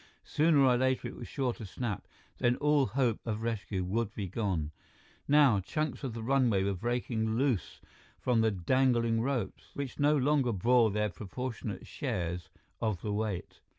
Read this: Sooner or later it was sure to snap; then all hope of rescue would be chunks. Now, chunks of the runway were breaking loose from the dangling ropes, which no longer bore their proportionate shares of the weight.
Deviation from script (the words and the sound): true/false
true